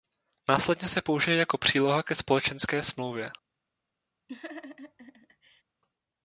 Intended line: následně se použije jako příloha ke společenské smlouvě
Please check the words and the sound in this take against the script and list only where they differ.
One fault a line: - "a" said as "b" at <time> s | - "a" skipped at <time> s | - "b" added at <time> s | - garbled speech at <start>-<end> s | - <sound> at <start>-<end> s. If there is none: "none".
- laugh at 4.3-5.6 s